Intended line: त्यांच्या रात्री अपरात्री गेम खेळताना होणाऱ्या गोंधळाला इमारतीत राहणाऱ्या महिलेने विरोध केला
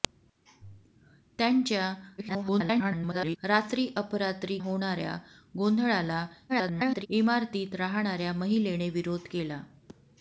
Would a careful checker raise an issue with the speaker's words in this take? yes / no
yes